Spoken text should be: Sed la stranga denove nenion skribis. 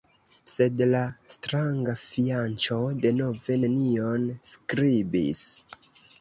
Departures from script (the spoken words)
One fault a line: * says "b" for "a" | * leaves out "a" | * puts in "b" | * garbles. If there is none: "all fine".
* puts in "fianĉo"